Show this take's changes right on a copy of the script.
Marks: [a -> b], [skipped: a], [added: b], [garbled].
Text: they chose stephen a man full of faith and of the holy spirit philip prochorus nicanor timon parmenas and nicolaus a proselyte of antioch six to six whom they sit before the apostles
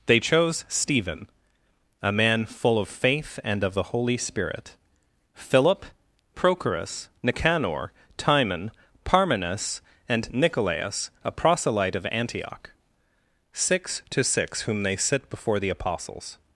they chose stephen a man full of faith and of the holy spirit philip prochorus nicanor timon parmenas and nicolaus a proselyte of antioch six to six whom they sit before the apostles